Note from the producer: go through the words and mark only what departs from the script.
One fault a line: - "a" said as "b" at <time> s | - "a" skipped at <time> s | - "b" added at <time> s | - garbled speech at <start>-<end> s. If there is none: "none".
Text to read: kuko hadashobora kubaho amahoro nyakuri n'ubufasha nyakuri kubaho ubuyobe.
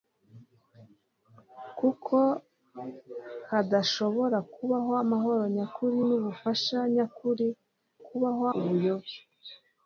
none